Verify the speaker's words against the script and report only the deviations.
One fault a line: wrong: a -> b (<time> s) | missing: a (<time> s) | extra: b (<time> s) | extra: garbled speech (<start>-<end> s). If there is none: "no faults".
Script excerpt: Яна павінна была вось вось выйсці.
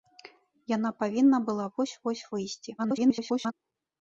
extra: garbled speech (2.8-3.5 s)